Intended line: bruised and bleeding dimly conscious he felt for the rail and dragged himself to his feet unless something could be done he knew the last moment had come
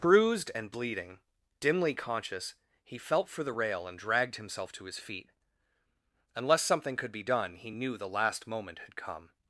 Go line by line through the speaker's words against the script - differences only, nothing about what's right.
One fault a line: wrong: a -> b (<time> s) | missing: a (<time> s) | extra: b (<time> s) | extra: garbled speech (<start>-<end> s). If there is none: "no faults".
no faults